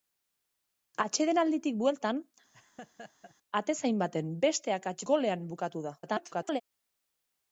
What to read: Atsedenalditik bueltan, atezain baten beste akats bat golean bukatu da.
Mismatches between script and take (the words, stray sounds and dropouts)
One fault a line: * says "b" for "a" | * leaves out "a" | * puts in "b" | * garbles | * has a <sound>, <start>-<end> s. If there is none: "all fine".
* has a laugh, 2.5-3.4 s
* leaves out "bat"
* garbles